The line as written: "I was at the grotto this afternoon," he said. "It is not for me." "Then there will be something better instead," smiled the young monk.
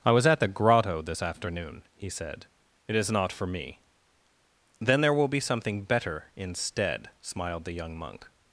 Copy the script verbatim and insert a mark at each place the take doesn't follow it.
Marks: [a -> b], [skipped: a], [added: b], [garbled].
"I was at the grotto this afternoon," he said. "It is not for me." "Then there will be something better instead," smiled the young monk.